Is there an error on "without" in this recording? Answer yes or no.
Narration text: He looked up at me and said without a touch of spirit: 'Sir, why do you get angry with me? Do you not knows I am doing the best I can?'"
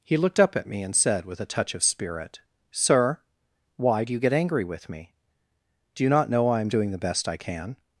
yes